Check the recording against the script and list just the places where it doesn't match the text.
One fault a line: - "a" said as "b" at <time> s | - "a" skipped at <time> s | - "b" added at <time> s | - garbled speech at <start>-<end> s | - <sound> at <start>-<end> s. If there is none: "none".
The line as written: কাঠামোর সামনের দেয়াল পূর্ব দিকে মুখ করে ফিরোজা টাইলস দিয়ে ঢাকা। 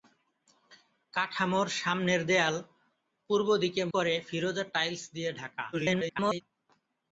- "মুখ" skipped at 3.8 s
- garbled speech at 5.7-6.4 s